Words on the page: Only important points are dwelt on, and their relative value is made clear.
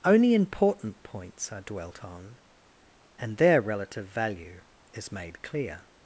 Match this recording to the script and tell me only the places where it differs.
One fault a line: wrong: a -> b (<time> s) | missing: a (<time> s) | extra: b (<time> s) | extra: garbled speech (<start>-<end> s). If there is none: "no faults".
no faults